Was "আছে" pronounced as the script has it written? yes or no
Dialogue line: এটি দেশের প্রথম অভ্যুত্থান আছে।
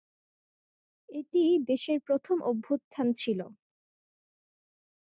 no